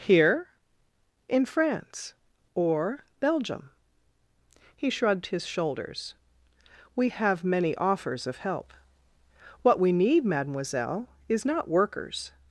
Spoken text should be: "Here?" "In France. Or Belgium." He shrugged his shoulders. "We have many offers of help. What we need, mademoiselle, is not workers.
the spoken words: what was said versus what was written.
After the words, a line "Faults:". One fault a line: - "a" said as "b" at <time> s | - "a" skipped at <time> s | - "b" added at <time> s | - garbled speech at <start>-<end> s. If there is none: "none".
"Here?" "In France. Or Belgium." He shrugged his shoulders. "We have many offers of help. What we need, mademoiselle, is not workers.
Faults:
none